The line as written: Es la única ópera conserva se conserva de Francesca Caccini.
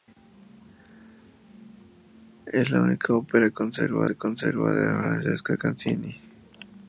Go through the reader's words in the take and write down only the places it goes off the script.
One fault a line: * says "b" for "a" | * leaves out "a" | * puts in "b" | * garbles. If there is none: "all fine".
all fine